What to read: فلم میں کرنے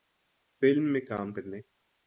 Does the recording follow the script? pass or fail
fail